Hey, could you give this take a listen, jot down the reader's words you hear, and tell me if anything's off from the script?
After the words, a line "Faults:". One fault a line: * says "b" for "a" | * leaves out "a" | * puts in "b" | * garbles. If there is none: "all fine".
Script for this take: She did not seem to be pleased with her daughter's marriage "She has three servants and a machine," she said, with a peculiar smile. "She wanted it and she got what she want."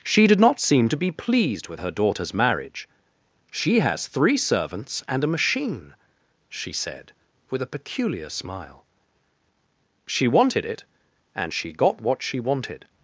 She did not seem to be pleased with her daughter's marriage "She has three servants and a machine," she said, with a peculiar smile. "She wanted it and she got what she wanted."
Faults:
* says "wanted" for "want"